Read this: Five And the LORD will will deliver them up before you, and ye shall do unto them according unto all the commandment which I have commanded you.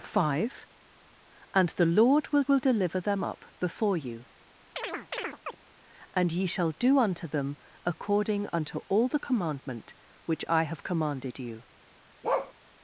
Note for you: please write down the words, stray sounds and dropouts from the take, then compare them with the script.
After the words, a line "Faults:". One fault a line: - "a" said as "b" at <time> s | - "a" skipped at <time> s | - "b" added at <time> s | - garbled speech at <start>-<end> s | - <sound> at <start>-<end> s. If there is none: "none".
Five And the LORD will will deliver them up before you, and ye shall do unto them according unto all the commandment which I have commanded you.
Faults:
- chirp at 4.8-5.6 s
- bark at 12.2-12.5 s